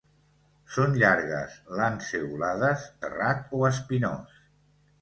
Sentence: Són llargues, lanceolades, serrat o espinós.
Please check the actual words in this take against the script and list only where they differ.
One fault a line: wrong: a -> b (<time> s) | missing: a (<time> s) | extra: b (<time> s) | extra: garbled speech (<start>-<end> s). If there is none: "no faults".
no faults